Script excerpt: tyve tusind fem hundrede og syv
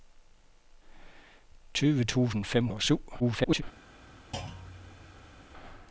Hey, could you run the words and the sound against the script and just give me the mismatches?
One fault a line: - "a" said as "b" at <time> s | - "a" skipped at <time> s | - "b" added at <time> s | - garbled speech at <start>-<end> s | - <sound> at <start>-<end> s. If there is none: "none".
- "hundrede" skipped at 2.7 s
- garbled speech at 3.2-3.6 s
- thud at 4.3-5.4 s